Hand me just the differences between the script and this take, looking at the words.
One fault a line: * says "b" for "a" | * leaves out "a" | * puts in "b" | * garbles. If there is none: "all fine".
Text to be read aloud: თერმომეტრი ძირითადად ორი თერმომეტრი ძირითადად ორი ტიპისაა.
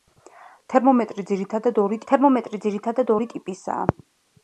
all fine